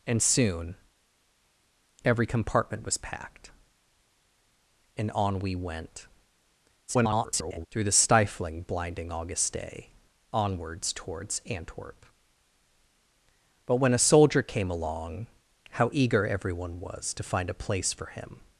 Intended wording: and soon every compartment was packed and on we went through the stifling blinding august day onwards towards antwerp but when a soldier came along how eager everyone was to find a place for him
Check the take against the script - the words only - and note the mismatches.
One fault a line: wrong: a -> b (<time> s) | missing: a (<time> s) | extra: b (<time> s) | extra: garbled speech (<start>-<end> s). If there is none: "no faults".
extra: garbled speech (6.9-7.7 s)